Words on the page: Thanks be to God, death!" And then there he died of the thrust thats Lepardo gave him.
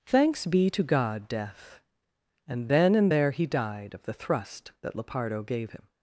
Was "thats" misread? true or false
true